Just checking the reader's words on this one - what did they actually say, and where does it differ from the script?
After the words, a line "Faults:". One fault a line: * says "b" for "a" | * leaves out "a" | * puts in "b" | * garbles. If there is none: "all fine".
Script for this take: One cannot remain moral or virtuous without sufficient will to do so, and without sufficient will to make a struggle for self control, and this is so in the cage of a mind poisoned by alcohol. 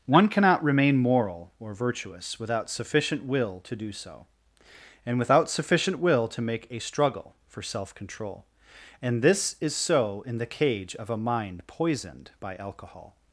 One cannot remain moral or virtuous without sufficient will to do so, and without sufficient will to make a struggle for self control, and this is so in the cage of a mind poisoned by alcohol.
Faults:
all fine